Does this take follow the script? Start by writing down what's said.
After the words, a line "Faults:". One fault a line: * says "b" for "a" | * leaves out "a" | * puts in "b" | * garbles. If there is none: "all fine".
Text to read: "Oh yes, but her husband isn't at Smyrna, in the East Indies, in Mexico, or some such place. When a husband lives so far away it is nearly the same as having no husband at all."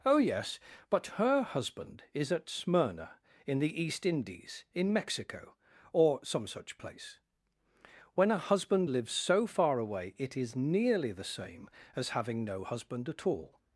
"Oh yes, but her husband is at Smyrna, in the East Indies, in Mexico, or some such place. When a husband lives so far away it is nearly the same as having no husband at all."
Faults:
* says "is" for "isn't"